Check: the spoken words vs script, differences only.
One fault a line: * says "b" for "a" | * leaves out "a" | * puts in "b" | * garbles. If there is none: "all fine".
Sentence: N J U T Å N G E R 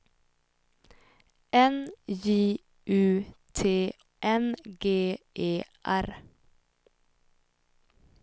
* leaves out "Å"